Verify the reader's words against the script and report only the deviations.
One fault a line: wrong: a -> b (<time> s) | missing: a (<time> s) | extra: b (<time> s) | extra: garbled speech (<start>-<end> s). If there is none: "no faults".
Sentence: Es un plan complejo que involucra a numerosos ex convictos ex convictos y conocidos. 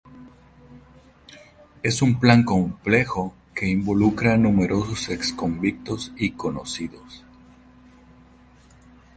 missing: ex convictos (6.1 s)